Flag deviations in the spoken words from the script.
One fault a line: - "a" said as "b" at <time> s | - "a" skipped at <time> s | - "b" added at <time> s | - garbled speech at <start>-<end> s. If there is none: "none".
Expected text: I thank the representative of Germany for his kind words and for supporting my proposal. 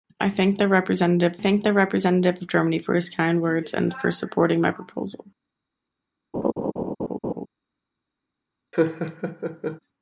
- "thank the representative" added at 1.4 s